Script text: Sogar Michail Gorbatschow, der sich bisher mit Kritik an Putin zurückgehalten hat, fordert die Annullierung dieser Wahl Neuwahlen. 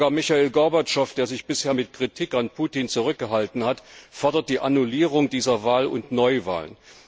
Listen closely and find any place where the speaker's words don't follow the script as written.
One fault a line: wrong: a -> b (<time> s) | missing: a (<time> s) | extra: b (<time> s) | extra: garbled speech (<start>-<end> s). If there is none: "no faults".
extra: und (5.9 s)